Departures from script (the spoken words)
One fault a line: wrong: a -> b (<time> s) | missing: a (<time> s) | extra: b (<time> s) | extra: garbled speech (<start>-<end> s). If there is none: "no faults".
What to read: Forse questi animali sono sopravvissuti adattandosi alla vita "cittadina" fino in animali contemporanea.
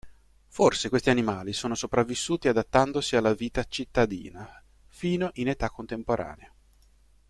wrong: animali -> età (5.5 s)